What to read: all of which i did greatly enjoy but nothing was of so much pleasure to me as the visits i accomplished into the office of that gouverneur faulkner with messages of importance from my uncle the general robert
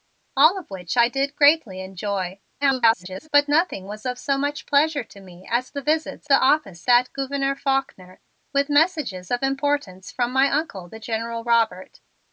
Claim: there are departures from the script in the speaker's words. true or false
true